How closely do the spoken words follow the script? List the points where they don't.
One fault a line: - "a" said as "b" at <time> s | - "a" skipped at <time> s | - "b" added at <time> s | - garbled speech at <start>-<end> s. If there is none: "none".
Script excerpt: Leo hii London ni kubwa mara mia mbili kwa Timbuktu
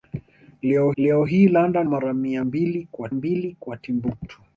- "leo" added at 1.0 s
- "ni kubwa mara mia" said as "mara mia mbili kwa" at 1.8 s